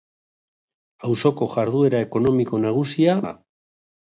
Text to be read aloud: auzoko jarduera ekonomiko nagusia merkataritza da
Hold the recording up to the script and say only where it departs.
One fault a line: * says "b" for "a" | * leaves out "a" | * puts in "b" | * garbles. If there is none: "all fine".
* leaves out "merkataritza"